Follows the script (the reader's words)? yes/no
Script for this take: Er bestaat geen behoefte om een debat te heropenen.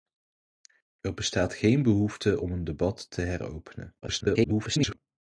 no